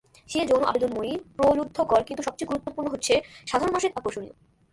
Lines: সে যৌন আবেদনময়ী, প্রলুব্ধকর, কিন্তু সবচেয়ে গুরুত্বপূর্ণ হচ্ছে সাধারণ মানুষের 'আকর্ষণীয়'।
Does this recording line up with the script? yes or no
yes